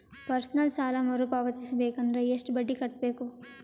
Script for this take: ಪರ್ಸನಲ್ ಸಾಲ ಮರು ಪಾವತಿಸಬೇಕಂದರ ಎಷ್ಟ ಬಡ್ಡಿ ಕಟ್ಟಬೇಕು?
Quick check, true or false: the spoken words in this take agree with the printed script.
true